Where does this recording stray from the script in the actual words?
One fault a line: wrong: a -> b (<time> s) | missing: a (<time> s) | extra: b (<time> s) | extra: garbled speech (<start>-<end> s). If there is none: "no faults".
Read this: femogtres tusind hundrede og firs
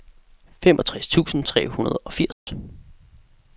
extra: tre (1.4 s)